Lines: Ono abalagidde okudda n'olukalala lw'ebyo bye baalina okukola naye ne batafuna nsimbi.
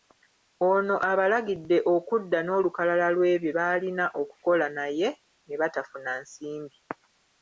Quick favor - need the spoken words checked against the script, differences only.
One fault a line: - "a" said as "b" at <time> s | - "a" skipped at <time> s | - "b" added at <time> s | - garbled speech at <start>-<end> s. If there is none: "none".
- "bye" skipped at 3.5 s